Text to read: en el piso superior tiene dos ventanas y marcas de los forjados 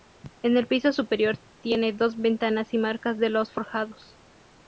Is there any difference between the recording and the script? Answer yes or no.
no